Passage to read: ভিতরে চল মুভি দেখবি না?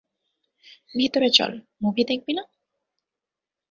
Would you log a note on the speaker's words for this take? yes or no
no